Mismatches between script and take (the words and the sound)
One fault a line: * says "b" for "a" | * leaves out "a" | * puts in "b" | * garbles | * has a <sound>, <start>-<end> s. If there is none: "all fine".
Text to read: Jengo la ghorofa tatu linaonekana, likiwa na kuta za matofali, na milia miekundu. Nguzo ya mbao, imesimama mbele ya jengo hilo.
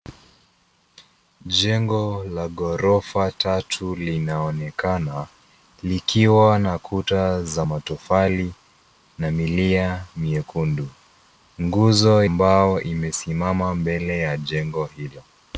* leaves out "ya"